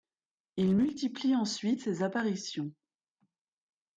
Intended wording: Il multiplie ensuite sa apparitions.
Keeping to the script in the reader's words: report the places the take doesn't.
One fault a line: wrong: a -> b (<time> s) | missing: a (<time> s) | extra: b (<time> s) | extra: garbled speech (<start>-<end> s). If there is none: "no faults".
wrong: sa -> ses (1.8 s)